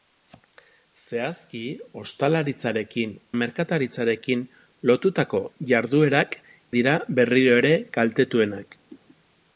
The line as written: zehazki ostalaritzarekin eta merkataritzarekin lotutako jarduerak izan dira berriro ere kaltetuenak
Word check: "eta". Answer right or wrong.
wrong